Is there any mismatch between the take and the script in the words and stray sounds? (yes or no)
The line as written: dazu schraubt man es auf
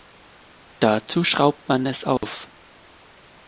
yes